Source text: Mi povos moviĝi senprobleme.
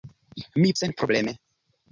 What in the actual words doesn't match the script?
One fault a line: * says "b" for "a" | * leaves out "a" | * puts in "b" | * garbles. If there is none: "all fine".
* leaves out "povos moviĝi"